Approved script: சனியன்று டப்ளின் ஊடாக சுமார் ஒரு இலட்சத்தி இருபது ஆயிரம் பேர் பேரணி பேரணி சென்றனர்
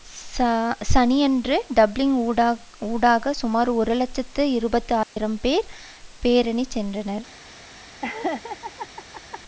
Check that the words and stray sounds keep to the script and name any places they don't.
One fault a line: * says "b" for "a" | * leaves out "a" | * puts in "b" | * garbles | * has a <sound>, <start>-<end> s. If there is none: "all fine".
* has a dropout, 5.0-5.2 s
* leaves out "பேரணி"
* has a laugh, 8.0-9.4 s